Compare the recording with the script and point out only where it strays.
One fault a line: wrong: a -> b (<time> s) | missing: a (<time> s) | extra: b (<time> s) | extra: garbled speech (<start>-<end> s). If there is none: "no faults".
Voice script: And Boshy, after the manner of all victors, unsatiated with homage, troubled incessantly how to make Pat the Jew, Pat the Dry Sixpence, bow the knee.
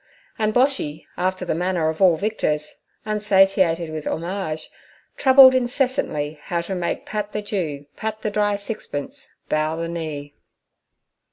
no faults